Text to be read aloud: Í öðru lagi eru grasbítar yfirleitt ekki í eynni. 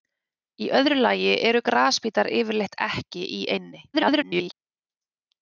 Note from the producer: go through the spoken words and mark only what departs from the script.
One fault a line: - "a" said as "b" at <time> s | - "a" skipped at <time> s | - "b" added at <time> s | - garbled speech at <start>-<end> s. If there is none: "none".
- garbled speech at 3.9-4.5 s